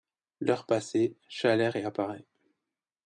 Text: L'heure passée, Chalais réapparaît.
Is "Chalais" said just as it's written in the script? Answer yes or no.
yes